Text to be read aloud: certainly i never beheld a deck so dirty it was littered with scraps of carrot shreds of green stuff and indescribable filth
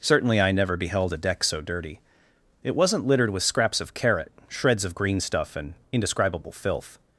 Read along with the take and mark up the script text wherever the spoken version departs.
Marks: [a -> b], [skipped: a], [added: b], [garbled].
certainly i never beheld a deck so dirty it [was -> wasn't] littered with scraps of carrot shreds of green stuff and indescribable filth